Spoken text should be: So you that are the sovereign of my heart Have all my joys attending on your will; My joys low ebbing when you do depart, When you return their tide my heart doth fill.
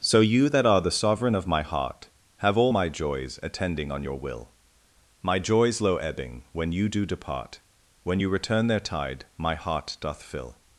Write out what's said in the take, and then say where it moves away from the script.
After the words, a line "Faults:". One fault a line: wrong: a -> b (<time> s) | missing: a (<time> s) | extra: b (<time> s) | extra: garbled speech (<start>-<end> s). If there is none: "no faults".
So you that are the sovereign of my heart Have all my joys attending on your will; My joys low ebbing when you do depart, When you return their tide my heart doth fill.
Faults:
no faults